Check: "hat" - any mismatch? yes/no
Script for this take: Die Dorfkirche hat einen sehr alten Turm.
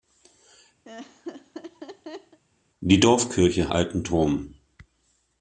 yes